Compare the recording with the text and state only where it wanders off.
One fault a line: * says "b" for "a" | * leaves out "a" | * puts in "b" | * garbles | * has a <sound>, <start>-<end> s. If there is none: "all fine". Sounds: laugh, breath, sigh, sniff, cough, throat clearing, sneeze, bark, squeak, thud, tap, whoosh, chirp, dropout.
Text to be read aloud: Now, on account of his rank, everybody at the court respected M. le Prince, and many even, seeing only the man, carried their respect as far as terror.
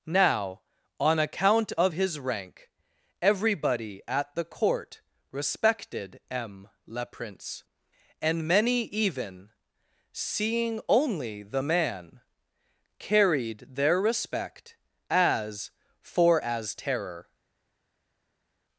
* says "for" for "far"